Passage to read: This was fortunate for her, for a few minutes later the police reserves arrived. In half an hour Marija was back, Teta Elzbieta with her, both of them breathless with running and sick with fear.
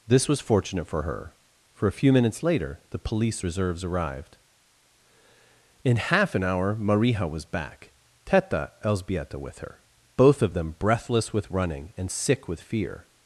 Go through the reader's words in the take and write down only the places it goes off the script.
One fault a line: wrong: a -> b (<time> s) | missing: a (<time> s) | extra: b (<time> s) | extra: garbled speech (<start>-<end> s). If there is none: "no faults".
no faults